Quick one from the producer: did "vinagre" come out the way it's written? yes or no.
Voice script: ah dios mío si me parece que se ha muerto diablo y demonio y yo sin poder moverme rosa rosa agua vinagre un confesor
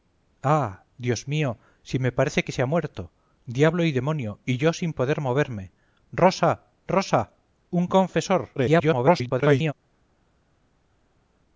no